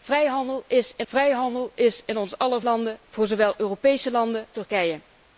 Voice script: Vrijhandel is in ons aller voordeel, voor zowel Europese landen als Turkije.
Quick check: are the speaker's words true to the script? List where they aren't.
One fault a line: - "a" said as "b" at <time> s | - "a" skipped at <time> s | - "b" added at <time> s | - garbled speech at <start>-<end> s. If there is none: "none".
- "vrijhandel is in" added at 1.1 s
- "voordeel" said as "landen" at 2.6 s
- "als" skipped at 4.5 s